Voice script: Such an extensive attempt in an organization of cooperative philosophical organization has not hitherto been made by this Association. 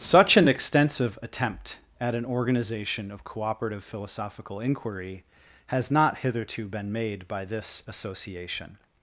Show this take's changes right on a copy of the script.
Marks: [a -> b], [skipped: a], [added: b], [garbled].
Such an extensive attempt [in -> at] an organization of cooperative philosophical [organization -> inquiry] has not hitherto been made by this Association.